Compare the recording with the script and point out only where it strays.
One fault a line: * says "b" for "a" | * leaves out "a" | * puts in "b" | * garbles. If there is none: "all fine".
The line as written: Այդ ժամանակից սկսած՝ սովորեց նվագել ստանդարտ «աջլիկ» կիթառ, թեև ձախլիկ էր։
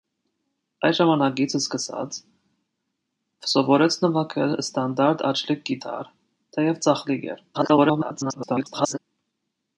* garbles